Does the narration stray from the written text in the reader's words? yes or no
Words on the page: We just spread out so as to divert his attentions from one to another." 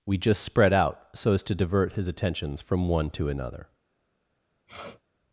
no